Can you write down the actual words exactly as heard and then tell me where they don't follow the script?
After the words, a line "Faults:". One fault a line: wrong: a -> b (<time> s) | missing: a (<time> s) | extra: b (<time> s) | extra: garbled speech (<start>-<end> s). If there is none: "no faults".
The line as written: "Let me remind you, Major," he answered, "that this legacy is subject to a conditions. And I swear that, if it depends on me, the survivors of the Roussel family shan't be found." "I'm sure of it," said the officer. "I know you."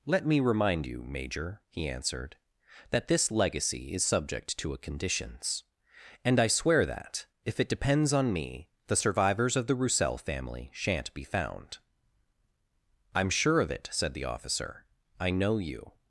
"Let me remind you, Major," he answered, "that this legacy is subject to a conditions. And I swear that, if it depends on me, the survivors of the Roussel family shan't be found." "I'm sure of it," said the officer. "I know you."
Faults:
no faults